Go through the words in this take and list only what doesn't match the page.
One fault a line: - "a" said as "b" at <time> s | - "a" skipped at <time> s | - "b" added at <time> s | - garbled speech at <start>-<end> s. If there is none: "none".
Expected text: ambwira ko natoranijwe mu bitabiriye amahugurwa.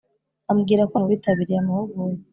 - "natoranijwe" skipped at 0.9 s